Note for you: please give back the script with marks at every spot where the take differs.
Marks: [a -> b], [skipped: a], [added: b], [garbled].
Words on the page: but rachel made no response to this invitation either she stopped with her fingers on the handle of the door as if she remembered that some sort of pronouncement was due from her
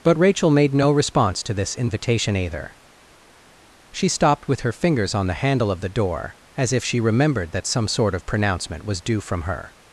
but rachel made no response to this invitation either she stopped with her fingers on the handle of the door as if she remembered that some sort of pronouncement was due from her